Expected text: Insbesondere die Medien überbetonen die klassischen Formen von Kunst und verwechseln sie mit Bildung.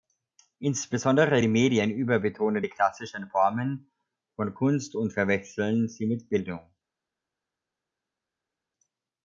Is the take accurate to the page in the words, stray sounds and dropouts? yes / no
yes